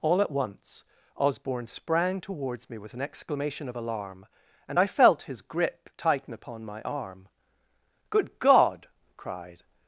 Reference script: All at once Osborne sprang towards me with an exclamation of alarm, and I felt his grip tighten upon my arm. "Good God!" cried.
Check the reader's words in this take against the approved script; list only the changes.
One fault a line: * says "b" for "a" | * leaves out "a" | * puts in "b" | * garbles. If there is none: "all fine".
all fine